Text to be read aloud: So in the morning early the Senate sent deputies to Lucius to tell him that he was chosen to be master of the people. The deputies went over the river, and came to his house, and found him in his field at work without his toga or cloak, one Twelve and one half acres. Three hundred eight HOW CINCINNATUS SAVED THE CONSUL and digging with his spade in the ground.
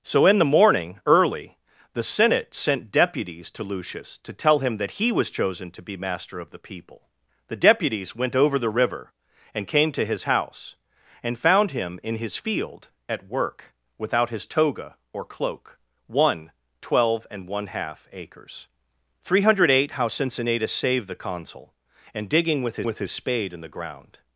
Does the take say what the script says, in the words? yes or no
no